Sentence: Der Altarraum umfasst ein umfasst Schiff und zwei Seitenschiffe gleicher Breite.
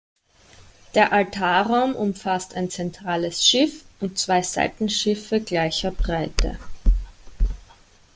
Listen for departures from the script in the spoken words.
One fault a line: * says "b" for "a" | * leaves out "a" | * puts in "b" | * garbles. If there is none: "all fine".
* says "zentrales" for "umfasst"